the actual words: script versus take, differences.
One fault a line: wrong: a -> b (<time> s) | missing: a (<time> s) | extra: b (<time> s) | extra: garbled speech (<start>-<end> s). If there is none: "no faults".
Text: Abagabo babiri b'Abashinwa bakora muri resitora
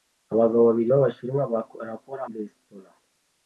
missing: muri (2.2 s)